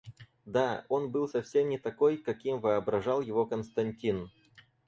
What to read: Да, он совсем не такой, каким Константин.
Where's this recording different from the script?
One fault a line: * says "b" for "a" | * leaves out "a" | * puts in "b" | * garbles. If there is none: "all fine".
* puts in "был"
* puts in "воображал его"